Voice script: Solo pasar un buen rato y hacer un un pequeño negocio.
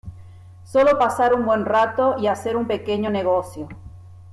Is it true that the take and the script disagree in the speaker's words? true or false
true